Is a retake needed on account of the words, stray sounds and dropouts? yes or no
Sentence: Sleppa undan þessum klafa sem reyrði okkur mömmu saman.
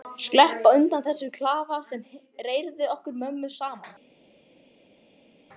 no